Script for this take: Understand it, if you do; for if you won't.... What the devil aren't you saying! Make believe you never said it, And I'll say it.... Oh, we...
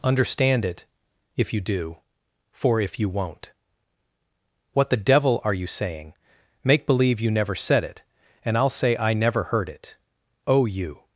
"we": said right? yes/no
no